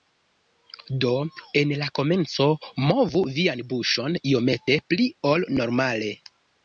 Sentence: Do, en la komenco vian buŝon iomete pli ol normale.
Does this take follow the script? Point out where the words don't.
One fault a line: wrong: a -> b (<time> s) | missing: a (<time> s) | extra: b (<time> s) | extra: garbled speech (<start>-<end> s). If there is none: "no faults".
extra: movu (2.9 s)